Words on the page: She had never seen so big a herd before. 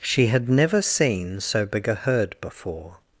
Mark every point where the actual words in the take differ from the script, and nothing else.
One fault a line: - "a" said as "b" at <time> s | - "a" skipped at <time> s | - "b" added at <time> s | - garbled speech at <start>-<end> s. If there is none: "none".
none